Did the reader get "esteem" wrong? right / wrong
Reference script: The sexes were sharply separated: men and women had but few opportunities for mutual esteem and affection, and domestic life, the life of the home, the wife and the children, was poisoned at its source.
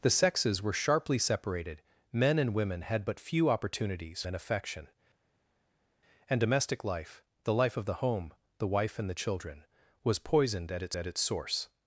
wrong